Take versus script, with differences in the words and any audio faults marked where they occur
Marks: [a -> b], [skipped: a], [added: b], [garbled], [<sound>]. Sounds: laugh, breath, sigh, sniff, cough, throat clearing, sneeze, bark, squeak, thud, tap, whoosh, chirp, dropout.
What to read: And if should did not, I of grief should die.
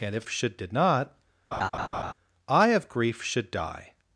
And if should did not, [laugh] I of grief should die.